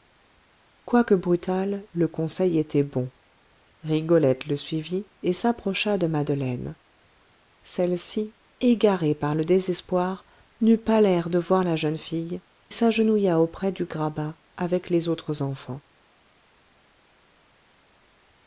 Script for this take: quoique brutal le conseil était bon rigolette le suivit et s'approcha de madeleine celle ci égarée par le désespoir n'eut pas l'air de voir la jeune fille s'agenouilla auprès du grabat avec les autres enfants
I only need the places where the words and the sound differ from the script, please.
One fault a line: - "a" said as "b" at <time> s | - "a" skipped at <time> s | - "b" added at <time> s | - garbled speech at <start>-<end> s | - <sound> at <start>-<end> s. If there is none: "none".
none